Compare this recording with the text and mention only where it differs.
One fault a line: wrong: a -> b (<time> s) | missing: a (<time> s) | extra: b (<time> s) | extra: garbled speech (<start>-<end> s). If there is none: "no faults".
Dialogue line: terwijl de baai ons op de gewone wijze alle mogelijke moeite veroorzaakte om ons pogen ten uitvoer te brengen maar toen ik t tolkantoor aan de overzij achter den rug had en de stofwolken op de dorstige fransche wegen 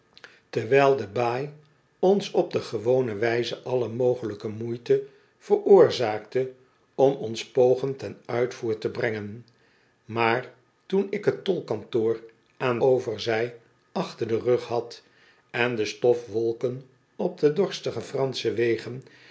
missing: de (12.8 s)